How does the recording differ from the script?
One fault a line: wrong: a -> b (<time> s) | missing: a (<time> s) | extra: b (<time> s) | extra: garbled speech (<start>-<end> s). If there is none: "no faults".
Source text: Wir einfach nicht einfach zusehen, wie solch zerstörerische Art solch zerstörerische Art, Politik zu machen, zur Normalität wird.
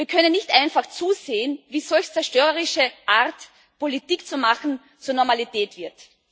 wrong: einfach -> können (0.1 s)
missing: solch zerstörerische Art (3.4 s)